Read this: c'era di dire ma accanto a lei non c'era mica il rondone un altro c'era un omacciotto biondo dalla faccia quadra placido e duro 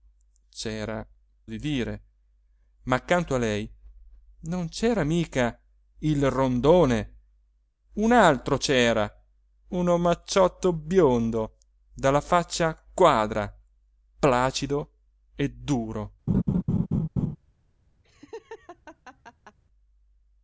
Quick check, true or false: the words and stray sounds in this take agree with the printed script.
false